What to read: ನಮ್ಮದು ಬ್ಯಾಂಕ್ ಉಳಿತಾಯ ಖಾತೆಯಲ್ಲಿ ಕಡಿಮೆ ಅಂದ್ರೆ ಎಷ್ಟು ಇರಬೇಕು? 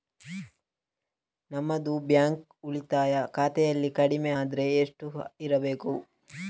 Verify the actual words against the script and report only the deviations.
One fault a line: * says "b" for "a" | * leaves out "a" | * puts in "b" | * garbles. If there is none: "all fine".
all fine